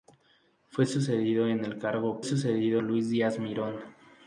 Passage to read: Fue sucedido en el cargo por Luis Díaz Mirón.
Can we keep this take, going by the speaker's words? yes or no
no